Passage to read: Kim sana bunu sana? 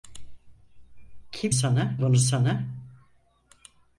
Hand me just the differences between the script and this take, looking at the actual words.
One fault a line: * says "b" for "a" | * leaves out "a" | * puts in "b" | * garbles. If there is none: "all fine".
all fine